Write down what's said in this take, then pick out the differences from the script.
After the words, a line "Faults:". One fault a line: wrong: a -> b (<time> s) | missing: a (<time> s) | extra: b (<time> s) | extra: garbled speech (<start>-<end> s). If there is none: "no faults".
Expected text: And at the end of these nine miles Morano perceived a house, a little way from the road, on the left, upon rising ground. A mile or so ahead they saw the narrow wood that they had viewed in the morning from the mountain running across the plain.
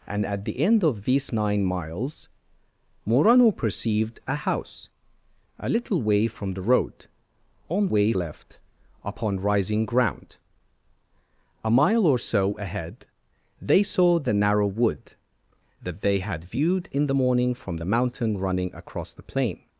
And at the end of these nine miles Morano perceived a house, a little way from the road, on way left, upon rising ground. A mile or so ahead they saw the narrow wood that they had viewed in the morning from the mountain running across the plain.
Faults:
wrong: the -> way (7.9 s)